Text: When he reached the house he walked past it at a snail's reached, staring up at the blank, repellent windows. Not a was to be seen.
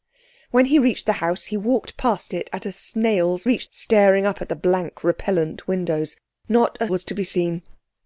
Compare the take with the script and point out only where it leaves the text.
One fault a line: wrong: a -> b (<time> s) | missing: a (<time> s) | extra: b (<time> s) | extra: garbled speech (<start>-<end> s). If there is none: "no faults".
no faults